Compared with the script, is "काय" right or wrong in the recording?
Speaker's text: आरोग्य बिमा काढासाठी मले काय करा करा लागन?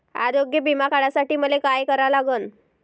right